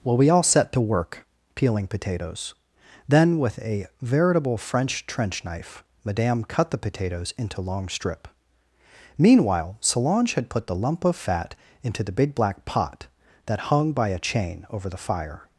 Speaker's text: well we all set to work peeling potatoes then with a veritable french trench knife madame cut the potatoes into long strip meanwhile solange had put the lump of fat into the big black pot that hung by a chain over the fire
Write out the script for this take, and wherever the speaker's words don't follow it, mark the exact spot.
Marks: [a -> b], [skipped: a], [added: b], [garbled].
well we all set to work peeling potatoes then with a veritable french trench knife madame cut the potatoes into long strip meanwhile solange had put the lump of fat into the big black pot that hung by a chain over the fire